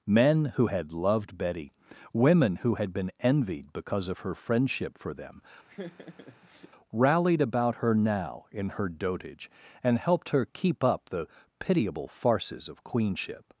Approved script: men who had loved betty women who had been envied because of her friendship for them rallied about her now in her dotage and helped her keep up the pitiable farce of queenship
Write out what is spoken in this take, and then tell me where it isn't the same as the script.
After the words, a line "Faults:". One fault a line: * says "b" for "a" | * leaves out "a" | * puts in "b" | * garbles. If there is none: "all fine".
men who had loved betty women who had been envied because of her friendship for them rallied about her now in her dotage and helped her keep up the pitiable farces of queenship
Faults:
* says "farces" for "farce"